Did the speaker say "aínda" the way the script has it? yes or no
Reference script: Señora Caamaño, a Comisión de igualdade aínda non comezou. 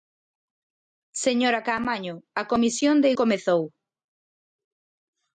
no